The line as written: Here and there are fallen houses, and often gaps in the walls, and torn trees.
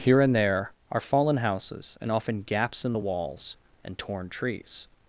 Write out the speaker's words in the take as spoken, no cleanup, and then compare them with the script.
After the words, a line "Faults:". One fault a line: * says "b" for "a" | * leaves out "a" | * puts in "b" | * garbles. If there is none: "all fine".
Here and there are fallen houses, and often gaps in the walls, and torn trees.
Faults:
all fine